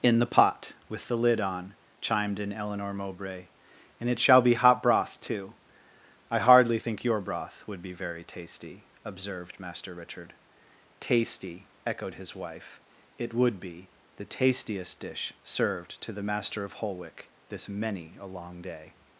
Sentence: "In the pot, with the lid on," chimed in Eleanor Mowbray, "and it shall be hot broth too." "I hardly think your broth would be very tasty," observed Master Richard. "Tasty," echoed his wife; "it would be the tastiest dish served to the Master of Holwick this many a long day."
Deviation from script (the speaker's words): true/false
false